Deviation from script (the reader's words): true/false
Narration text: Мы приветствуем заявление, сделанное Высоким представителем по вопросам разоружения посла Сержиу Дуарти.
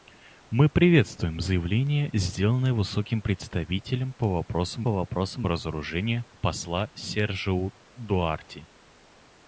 true